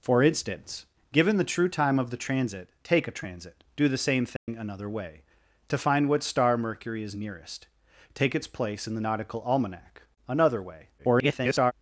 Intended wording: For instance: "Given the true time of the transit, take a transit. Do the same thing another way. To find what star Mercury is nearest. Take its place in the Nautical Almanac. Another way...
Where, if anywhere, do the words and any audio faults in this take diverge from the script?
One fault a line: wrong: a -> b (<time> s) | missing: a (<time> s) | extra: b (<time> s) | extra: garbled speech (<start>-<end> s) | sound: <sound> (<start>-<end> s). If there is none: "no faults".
sound: dropout (4.4-4.5 s)
extra: garbled speech (11.0-11.7 s)